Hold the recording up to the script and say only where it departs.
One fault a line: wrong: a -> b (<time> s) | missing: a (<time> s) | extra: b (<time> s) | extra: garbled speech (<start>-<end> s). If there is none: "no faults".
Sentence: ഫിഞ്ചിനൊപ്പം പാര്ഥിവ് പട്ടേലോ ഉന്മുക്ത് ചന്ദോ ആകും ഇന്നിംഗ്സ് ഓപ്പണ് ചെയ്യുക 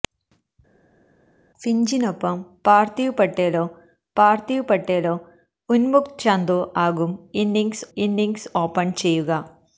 extra: പാര്ഥിവ് പട്ടേലോ (4.2 s)
extra: ഇന്നിംഗ്സ് (8.0 s)